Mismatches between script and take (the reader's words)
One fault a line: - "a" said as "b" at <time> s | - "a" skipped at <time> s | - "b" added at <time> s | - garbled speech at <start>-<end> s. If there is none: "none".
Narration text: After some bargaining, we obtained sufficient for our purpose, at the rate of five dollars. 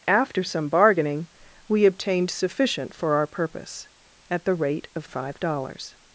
none